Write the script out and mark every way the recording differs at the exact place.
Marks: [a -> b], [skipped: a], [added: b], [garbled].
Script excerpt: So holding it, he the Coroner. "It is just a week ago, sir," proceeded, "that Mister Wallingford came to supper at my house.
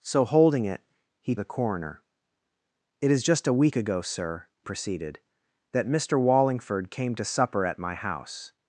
So holding it, he the Coroner. "It is just a week ago, sir," proceeded, "that Mister Wallingford came to supper at my house.